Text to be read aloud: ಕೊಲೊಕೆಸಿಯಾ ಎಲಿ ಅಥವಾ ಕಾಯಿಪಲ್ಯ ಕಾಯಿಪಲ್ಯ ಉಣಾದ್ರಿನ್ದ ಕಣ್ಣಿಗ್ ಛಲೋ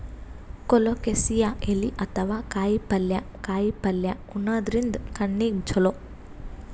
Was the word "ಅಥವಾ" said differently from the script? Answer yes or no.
no